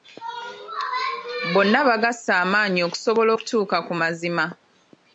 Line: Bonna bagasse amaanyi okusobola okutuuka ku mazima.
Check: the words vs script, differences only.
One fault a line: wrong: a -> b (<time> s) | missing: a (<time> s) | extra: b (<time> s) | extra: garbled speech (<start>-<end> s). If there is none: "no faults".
no faults